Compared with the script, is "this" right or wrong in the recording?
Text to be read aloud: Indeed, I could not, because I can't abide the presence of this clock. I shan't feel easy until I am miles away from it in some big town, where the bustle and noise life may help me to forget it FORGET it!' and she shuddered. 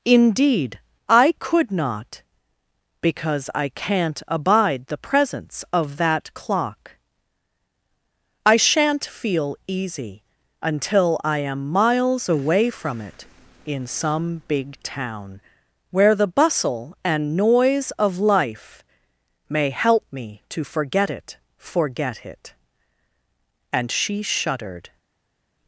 wrong